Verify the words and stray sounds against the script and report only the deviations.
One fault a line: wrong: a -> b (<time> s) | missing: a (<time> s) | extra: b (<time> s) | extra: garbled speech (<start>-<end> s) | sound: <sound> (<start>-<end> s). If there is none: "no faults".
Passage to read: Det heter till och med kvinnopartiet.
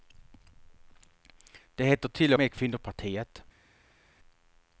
missing: och (2.3 s)